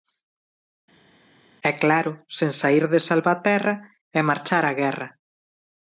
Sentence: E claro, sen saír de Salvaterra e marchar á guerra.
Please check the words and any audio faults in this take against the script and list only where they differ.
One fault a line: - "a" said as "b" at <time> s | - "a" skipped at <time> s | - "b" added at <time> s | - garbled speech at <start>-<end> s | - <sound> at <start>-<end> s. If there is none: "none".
none